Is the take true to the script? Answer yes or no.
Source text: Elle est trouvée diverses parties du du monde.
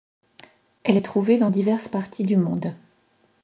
no